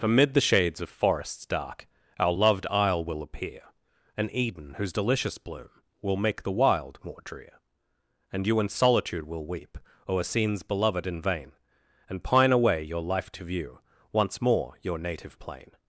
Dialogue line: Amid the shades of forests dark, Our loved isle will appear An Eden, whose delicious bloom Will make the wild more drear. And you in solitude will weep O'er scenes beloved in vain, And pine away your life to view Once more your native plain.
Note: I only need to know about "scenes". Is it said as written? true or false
true